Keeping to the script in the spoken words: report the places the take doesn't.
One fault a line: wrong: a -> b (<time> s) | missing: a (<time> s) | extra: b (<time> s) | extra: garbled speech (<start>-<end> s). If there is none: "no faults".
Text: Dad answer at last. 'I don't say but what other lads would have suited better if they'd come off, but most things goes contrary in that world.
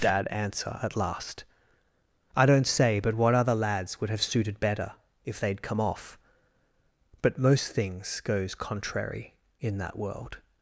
no faults